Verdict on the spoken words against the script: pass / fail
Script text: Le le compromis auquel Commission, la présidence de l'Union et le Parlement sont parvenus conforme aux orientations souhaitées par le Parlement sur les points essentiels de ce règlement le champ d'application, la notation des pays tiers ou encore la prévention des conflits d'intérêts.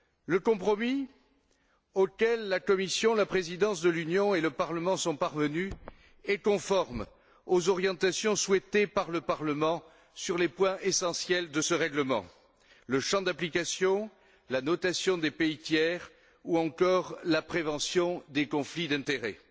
fail